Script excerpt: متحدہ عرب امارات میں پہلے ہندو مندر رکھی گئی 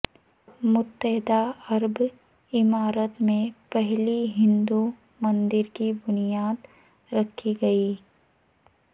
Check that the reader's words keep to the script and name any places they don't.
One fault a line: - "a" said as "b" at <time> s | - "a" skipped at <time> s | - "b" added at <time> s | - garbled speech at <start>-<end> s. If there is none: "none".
- "کی بنیاد" added at 5.7 s